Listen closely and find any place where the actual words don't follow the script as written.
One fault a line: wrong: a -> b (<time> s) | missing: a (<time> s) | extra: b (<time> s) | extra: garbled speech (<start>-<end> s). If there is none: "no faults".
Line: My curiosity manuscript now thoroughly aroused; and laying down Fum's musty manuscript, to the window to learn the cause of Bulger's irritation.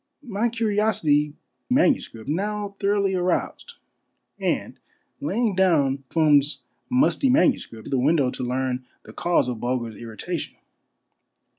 no faults